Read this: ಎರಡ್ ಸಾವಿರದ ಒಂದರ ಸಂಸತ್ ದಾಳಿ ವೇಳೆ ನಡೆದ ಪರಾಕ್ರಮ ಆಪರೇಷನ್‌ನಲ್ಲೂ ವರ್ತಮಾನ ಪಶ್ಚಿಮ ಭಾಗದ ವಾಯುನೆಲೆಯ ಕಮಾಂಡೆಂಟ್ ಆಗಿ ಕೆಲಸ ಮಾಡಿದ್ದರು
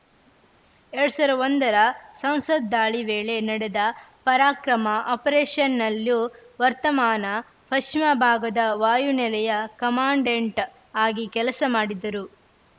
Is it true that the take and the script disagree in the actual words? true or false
false